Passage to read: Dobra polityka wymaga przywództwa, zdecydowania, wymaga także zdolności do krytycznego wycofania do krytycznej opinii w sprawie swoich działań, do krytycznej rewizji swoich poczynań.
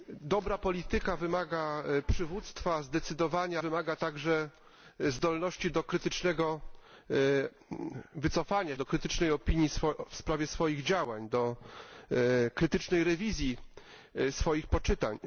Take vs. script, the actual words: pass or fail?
pass